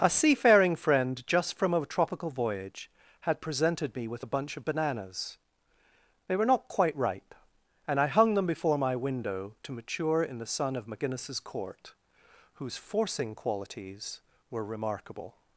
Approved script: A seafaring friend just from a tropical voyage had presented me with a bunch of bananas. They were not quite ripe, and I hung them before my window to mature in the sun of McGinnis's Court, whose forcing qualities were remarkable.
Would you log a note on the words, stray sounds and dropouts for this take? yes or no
no